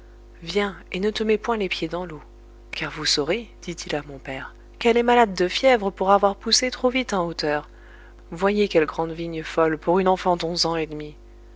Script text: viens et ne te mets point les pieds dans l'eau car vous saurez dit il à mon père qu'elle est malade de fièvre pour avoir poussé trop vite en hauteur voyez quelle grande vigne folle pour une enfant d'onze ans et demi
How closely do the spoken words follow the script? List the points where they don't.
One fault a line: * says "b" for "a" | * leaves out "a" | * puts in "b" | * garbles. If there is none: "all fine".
all fine